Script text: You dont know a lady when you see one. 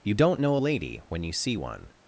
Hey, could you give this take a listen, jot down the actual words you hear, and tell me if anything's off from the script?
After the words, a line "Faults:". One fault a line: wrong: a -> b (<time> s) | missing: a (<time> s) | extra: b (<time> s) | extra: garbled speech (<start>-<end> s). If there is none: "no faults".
You dont know a lady when you see one.
Faults:
no faults